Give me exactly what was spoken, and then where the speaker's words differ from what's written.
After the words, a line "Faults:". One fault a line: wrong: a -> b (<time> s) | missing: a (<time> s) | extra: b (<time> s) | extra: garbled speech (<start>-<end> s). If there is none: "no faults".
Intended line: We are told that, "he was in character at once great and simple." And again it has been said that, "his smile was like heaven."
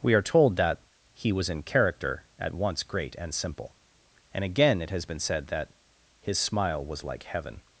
We are told that, "he was in character at once great and simple." And again it has been said that, "his smile was like heaven."
Faults:
no faults